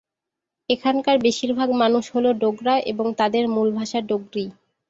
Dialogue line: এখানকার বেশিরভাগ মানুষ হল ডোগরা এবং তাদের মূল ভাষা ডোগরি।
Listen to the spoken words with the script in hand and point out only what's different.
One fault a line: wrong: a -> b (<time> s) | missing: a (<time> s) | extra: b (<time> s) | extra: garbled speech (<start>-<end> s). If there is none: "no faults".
no faults